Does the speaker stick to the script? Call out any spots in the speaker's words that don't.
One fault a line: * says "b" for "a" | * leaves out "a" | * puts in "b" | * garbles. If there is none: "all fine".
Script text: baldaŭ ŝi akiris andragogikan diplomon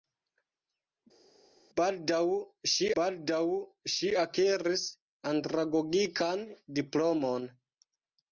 * puts in "baldaŭ ŝi"